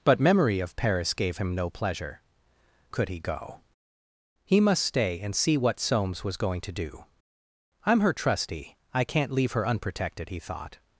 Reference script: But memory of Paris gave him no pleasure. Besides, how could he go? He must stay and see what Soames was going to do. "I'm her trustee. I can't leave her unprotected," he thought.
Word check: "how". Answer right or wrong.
wrong